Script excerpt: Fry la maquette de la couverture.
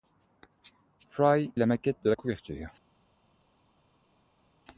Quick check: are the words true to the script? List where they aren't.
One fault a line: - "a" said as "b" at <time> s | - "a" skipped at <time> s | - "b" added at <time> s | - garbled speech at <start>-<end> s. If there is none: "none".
none